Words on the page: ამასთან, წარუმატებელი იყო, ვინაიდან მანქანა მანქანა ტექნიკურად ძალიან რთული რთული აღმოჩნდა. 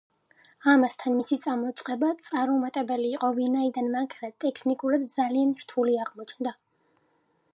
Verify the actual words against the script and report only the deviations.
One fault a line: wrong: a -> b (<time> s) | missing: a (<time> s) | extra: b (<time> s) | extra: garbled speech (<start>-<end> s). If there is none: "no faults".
extra: მისი წამოწყება (1.2 s)
missing: მანქანა (4.3 s)
missing: რთული (6.0 s)